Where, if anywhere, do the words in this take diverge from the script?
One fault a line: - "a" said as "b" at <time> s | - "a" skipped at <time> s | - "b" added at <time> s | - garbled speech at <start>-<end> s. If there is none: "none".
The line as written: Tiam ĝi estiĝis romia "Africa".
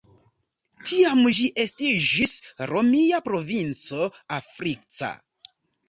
- "provinco" added at 3.3 s